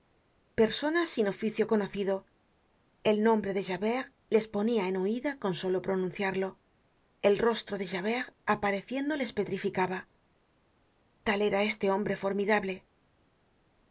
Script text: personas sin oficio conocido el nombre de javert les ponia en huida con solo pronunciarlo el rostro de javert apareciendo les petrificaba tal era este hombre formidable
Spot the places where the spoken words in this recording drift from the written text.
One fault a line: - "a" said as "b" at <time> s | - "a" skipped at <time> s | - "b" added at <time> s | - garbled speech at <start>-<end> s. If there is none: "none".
none